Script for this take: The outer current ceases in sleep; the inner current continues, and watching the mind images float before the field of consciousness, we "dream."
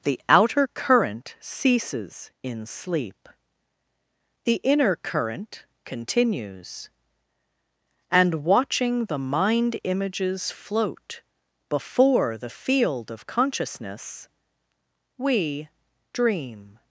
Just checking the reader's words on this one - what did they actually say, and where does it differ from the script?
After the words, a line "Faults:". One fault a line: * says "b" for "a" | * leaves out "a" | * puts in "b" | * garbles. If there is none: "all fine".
The outer current ceases in sleep; the inner current continues, and watching the mind images float before the field of consciousness, we "dream."
Faults:
all fine